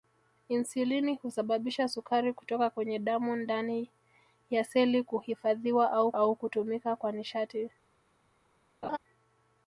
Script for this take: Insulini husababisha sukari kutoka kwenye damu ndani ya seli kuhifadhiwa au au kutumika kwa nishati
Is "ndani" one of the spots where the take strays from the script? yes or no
no